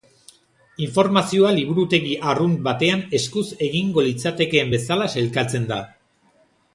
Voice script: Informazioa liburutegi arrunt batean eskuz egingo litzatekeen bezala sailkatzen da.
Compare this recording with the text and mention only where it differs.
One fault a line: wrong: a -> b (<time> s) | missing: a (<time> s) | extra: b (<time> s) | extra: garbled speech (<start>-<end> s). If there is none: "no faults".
no faults